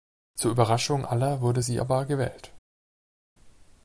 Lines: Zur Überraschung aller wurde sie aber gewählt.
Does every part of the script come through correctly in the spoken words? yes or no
yes